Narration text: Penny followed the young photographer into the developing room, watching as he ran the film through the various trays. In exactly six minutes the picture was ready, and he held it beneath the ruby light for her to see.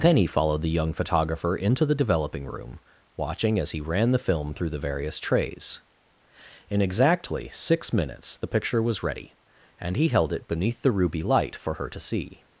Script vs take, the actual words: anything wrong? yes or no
no